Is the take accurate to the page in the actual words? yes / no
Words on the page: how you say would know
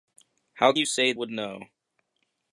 yes